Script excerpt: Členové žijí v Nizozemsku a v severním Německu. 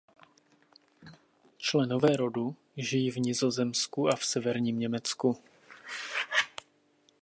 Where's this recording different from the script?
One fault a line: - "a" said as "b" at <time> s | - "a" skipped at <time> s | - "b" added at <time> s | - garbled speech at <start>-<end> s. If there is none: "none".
- "rodu" added at 2.2 s